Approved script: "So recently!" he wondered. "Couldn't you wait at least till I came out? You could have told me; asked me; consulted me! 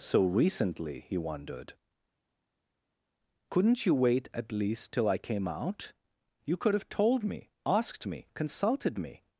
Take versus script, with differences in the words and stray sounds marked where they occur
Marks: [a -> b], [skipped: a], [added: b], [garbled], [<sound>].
"So recently!" he wondered. "Couldn't you wait at least till I came out? You could have told me; asked me; consulted me!